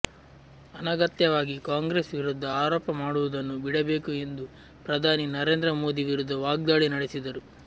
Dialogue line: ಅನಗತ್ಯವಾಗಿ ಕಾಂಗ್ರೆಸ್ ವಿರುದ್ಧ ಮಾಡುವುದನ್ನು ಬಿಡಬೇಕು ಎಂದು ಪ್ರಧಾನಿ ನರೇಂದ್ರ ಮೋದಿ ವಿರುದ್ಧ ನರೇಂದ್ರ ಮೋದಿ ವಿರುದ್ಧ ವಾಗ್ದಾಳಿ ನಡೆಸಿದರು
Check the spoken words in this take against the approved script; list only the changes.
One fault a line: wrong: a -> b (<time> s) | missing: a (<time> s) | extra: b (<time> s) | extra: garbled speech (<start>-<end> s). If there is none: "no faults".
extra: ಆರೋಪ (2.6 s)
missing: ನರೇಂದ್ರ ಮೋದಿ ವಿರುದ್ಧ (6.4 s)